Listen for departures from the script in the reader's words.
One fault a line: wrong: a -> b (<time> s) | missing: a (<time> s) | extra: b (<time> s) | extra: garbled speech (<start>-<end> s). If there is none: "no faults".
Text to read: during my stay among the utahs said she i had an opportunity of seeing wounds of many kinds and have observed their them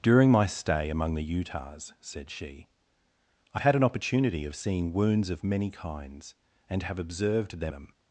no faults